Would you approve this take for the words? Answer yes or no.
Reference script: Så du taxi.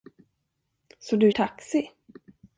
yes